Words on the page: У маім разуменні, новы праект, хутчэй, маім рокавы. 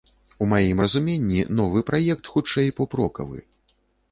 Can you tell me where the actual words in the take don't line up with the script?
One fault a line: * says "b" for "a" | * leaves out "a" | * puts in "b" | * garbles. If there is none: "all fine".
* says "поп" for "маім"